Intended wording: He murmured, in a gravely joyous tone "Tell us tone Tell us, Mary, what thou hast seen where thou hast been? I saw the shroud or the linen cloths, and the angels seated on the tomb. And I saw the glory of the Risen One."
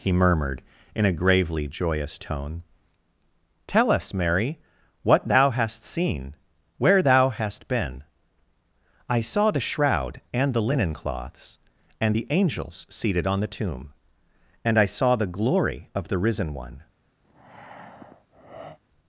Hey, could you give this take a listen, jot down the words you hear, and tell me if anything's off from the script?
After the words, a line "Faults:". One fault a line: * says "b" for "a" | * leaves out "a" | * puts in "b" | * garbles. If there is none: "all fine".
He murmured, in a gravely joyous tone "Tell us, Mary, what thou hast seen where thou hast been? I saw the shroud and the linen cloths, and the angels seated on the tomb. And I saw the glory of the Risen One."
Faults:
* leaves out "tone Tell us"
* says "and" for "or"